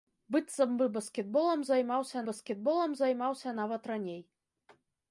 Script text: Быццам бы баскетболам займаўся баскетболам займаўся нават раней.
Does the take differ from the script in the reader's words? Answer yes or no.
no